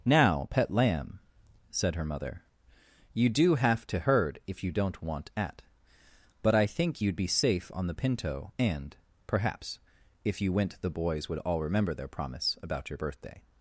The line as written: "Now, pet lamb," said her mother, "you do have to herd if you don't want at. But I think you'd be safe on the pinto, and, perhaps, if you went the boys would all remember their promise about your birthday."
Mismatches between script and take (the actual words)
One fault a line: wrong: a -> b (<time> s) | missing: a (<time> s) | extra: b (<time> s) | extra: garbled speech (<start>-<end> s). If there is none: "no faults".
no faults